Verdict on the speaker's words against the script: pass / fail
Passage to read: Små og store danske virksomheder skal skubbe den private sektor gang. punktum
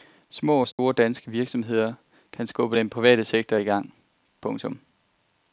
fail